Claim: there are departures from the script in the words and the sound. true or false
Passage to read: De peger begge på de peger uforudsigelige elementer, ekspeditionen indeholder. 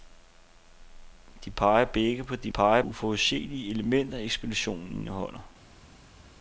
false